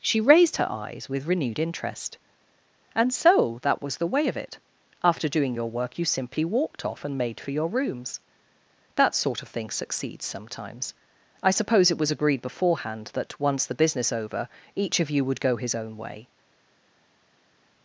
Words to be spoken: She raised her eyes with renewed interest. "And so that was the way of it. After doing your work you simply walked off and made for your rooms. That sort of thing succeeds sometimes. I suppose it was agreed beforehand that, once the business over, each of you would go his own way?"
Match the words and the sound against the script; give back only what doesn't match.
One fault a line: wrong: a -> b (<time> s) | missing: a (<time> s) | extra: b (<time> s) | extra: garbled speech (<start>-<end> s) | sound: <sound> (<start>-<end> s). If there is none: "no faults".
no faults